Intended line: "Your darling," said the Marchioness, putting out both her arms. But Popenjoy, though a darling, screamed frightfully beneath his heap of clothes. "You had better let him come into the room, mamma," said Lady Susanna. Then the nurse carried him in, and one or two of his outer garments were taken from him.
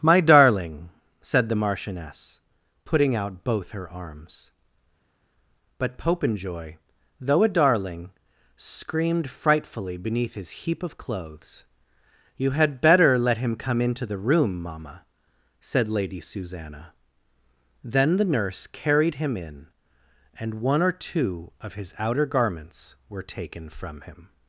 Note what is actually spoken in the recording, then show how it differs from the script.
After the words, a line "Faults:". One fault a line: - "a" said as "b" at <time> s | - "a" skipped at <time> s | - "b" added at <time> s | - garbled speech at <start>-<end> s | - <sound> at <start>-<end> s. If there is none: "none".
"My darling," said the Marchioness, putting out both her arms. But Popenjoy, though a darling, screamed frightfully beneath his heap of clothes. "You had better let him come into the room, mamma," said Lady Susanna. Then the nurse carried him in, and one or two of his outer garments were taken from him.
Faults:
- "Your" said as "My" at 0.0 s